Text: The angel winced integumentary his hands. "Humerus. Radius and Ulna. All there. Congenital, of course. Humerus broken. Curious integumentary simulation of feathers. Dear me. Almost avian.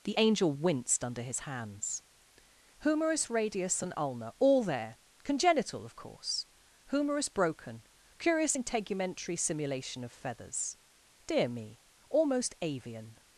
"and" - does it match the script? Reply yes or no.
yes